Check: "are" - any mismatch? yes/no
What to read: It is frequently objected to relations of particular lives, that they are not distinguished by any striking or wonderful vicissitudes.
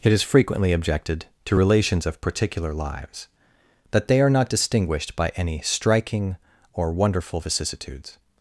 no